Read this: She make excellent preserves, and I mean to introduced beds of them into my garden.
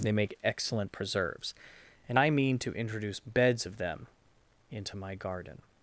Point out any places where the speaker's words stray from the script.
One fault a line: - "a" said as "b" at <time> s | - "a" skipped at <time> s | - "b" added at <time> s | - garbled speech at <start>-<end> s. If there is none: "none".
- "She" said as "They" at 0.0 s
- "introduced" said as "introduce" at 2.7 s